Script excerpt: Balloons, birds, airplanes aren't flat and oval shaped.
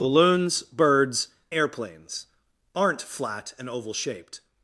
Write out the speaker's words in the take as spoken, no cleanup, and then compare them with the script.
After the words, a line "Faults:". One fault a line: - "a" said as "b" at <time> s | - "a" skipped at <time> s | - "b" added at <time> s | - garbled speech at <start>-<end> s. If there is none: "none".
Balloons, birds, airplanes aren't flat and oval shaped.
Faults:
none